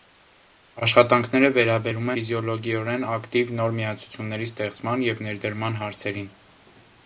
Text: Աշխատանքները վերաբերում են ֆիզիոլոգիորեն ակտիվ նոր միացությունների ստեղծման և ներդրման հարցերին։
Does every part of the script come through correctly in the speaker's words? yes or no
no